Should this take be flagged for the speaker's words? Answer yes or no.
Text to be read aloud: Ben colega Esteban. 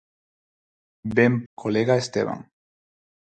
no